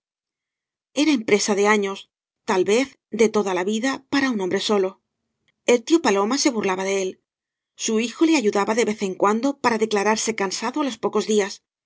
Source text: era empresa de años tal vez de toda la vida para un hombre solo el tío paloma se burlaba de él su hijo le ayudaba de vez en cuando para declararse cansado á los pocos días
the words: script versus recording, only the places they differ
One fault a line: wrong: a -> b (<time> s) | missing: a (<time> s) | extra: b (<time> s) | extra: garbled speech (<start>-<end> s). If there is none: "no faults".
no faults